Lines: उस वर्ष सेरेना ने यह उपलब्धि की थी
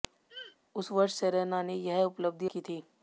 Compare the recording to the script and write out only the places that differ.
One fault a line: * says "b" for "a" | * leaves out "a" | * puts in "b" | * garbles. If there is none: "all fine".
all fine